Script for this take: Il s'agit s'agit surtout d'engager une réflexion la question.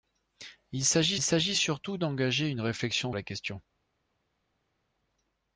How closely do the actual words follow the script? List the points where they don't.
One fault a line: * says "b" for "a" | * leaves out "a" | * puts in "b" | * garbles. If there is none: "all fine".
all fine